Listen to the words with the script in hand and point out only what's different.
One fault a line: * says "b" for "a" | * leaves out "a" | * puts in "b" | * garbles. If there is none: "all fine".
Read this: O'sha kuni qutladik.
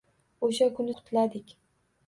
all fine